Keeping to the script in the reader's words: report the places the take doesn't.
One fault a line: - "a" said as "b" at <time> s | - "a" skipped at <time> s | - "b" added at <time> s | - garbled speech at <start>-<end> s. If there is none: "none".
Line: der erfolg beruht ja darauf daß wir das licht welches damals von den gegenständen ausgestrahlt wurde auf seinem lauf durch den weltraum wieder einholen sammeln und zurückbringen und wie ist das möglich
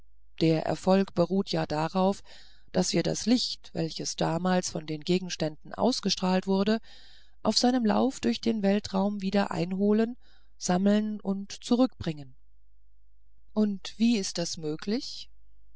none